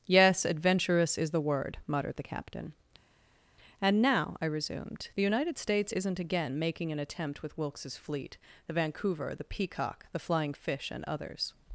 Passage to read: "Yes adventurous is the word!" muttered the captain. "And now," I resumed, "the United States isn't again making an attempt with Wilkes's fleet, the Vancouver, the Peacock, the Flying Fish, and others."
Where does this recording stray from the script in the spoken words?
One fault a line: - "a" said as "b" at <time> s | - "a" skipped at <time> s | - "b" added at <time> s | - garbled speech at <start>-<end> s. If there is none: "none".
none